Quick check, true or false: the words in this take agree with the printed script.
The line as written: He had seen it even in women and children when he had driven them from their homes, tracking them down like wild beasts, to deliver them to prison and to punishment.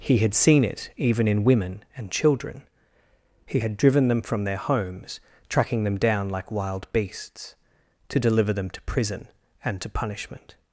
false